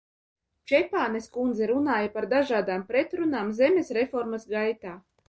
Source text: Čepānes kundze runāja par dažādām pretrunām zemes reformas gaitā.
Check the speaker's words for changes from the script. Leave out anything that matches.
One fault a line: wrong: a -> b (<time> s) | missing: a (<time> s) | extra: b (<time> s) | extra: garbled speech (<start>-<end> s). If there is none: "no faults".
no faults